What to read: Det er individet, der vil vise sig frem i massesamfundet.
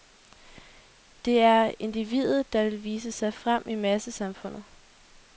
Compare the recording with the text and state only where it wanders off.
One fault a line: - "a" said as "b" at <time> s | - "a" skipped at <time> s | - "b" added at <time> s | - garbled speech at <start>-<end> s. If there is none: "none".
none